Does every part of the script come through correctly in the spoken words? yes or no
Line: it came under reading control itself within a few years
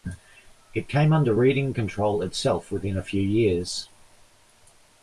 yes